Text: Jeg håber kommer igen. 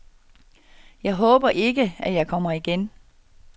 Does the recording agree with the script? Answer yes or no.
no